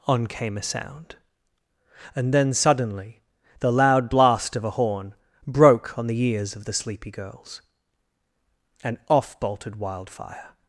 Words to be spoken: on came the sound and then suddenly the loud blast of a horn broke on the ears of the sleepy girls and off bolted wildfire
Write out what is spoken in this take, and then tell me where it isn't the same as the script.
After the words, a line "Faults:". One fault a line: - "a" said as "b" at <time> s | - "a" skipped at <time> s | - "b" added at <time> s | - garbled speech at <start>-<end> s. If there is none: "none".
on came a sound and then suddenly the loud blast of a horn broke on the ears of the sleepy girls and off bolted wildfire
Faults:
- "the" said as "a" at 0.6 s